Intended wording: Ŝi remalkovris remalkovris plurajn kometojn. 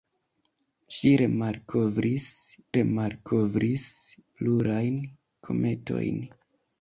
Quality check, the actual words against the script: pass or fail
pass